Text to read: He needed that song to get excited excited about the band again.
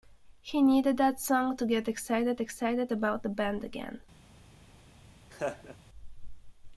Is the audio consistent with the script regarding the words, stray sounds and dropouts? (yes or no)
no